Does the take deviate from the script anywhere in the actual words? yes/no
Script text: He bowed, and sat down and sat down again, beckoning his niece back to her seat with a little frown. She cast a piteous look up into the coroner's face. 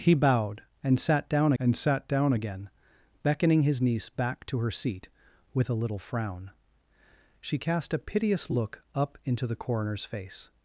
no